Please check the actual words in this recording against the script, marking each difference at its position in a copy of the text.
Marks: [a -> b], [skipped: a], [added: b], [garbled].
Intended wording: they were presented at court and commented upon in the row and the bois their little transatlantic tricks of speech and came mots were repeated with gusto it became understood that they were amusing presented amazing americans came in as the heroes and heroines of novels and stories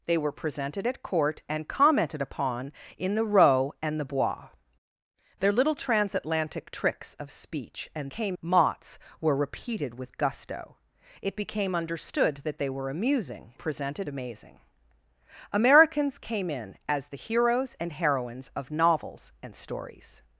they were presented at court and commented upon in the row and the bois their little transatlantic tricks of speech and came mots were repeated with gusto it became understood that they were amusing presented amazing americans came in as the heroes and heroines of novels and stories